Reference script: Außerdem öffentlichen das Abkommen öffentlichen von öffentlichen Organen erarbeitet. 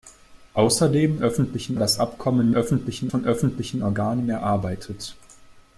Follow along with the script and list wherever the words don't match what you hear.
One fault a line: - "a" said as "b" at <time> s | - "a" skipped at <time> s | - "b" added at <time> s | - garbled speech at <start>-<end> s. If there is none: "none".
none